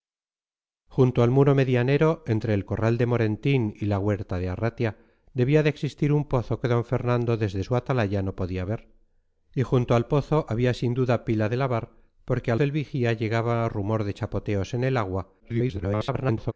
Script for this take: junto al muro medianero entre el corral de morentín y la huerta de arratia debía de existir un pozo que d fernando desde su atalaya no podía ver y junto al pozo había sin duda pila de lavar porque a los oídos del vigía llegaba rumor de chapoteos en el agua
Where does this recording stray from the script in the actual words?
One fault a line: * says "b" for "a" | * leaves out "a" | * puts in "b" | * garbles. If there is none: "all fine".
* leaves out "los oídos"
* garbles